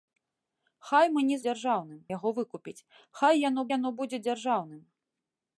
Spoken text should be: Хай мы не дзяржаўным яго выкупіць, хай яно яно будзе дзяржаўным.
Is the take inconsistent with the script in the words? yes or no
no